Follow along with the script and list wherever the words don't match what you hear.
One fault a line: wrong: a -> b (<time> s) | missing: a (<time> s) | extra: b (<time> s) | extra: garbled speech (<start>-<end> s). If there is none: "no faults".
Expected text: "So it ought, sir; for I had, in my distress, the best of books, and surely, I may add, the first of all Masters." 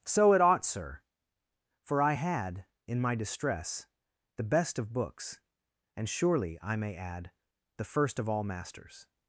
no faults